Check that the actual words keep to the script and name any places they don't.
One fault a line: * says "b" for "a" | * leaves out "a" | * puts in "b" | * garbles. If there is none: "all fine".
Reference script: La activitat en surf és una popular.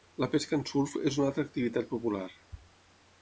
* says "pesca" for "activitat"
* puts in "altra activitat"